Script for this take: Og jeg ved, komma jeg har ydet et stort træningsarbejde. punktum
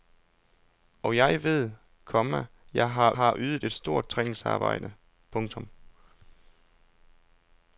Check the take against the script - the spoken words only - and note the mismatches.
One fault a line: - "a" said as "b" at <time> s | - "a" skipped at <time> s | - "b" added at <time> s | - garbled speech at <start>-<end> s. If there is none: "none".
- "har" added at 3.1 s